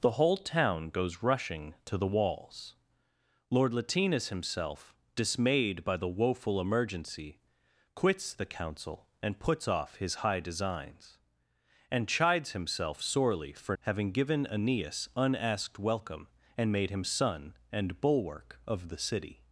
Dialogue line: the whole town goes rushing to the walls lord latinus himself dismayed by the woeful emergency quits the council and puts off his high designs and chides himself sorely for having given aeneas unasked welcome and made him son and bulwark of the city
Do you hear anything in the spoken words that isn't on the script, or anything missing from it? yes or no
no